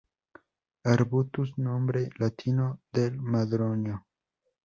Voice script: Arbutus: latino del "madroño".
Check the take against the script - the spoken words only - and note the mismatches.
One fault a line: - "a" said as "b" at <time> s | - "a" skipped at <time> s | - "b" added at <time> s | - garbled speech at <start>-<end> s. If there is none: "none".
- "nombre" added at 1.6 s